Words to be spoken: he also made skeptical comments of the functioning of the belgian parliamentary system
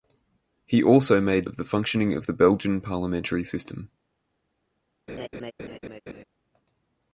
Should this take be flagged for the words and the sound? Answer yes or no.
yes